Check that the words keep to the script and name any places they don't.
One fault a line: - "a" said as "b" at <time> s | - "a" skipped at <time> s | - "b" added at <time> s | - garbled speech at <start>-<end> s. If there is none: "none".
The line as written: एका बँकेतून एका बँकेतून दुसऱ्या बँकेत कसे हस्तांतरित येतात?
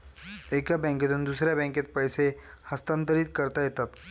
- "एका बँकेतून" skipped at 1.2 s
- "पैसे" added at 1.9 s
- "करता" added at 3.4 s